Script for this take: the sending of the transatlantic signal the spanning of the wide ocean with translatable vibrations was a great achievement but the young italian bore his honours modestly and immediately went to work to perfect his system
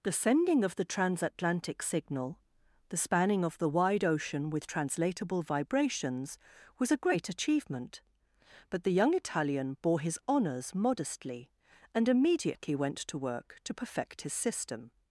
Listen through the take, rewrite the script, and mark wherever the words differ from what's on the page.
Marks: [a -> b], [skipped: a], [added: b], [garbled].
the sending of the transatlantic signal the spanning of the wide ocean with translatable vibrations was a great achievement but the young italian bore his honours modestly and immediately went to work to perfect his system